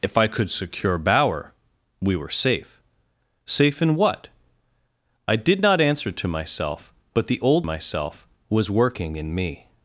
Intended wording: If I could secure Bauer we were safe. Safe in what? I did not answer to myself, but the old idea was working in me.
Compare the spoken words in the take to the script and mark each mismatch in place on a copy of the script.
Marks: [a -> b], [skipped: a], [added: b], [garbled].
If I could secure Bauer we were safe. Safe in what? I did not answer to myself, but the old [idea -> myself] was working in me.